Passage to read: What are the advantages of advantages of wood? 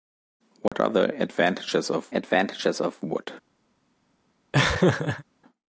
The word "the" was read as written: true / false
true